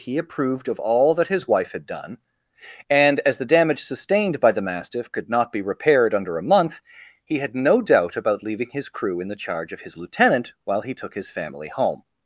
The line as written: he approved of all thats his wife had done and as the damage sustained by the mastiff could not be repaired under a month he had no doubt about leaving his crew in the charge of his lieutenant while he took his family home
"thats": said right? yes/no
no